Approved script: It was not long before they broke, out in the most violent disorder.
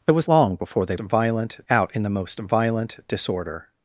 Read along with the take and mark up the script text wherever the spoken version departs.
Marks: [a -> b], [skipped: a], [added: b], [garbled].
It was [skipped: not] long before they [broke, -> violent] out in the most violent disorder.